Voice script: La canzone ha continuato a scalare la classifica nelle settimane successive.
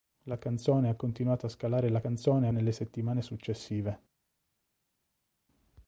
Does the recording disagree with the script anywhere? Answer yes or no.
yes